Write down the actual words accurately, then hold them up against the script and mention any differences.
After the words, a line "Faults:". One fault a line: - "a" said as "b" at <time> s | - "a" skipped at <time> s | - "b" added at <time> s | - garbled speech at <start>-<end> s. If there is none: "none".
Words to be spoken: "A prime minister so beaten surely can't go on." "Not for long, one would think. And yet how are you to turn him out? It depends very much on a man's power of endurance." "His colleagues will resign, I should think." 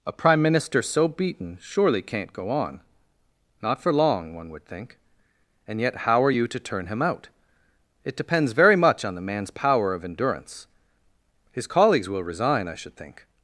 "A prime minister so beaten surely can't go on." "Not for long, one would think. And yet how are you to turn him out? It depends very much on the man's power of endurance." "His colleagues will resign, I should think."
Faults:
- "a" said as "the" at 9.2 s